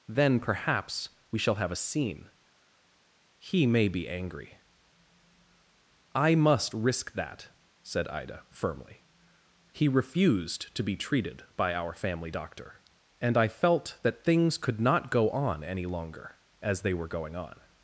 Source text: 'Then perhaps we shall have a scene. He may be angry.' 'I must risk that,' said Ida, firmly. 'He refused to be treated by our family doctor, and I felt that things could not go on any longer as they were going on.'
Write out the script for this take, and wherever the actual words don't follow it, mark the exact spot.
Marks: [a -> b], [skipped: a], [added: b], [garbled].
'Then perhaps we shall have a scene. He may be angry.' 'I must risk that,' said Ida, firmly. 'He refused to be treated by our family doctor, and I felt that things could not go on any longer as they were going on.'